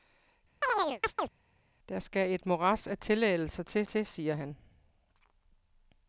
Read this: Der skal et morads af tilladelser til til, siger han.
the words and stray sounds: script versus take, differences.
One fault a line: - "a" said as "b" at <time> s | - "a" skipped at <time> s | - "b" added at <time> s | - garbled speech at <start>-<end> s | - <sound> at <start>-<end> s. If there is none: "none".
- chirp at 0.6-1.3 s